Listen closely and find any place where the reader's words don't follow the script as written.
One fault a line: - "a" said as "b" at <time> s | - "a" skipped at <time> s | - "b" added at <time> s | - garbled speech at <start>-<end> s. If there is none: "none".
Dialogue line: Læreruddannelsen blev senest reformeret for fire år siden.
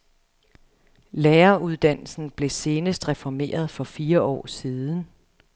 none